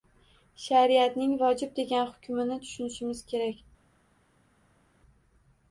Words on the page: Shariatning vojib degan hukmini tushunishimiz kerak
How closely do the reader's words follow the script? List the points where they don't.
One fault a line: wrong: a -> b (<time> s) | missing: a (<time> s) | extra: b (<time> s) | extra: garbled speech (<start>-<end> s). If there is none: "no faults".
no faults